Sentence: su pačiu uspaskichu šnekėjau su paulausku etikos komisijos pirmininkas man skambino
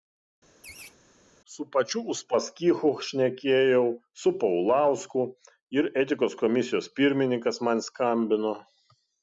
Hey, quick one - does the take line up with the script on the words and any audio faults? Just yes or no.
no